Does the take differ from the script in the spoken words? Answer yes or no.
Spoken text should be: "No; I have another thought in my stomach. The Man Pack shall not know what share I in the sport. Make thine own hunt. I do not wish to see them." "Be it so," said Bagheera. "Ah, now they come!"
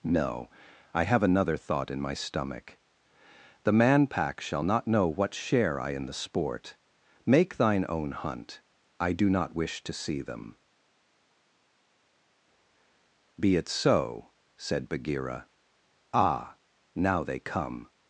no